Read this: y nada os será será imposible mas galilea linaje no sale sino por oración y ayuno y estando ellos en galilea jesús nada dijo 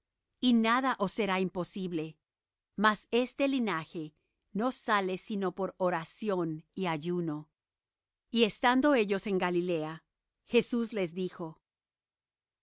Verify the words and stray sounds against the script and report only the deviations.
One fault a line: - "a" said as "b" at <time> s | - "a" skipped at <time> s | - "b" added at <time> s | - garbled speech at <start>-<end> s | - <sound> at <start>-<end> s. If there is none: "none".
- "será" skipped at 1.4 s
- "galilea" said as "este" at 3.1 s
- "nada" said as "les" at 10.9 s